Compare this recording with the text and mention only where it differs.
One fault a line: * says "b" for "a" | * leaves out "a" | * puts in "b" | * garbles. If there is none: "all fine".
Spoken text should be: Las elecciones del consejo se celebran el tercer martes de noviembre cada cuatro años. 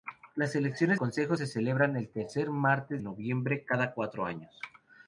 * leaves out "del"
* leaves out "de"